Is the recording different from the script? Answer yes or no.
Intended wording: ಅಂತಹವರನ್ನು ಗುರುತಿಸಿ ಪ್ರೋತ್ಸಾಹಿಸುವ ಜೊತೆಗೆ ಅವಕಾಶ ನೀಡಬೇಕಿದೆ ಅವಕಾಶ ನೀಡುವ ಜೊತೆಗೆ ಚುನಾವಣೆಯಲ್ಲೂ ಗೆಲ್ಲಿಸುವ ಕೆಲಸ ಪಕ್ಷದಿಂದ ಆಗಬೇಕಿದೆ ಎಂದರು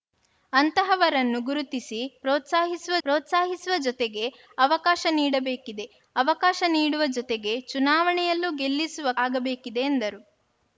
yes